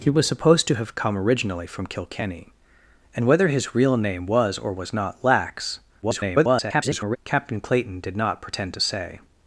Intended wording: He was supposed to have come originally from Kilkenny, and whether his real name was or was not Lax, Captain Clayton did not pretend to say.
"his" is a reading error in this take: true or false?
false